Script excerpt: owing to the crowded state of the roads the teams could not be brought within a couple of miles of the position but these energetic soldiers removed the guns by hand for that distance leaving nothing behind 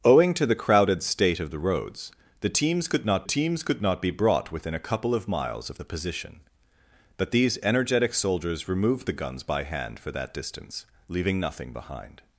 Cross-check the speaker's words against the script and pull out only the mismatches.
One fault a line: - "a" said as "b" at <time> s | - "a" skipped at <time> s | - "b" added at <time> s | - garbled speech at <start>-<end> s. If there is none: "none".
- "teams could not" added at 3.2 s